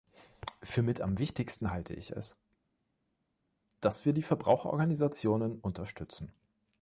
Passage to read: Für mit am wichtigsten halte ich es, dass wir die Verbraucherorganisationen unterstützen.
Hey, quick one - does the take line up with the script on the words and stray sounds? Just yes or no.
yes